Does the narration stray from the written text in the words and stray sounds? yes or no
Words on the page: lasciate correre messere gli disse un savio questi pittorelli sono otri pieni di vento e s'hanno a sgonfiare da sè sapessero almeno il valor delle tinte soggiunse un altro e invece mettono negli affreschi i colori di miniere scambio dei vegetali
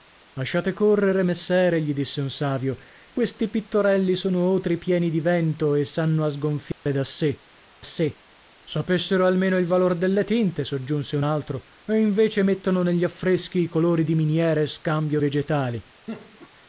yes